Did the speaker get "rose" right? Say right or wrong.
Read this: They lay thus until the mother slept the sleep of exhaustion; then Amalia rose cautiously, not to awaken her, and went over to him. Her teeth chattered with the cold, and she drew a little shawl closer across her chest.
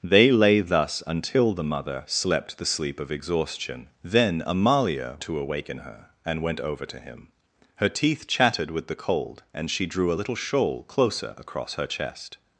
wrong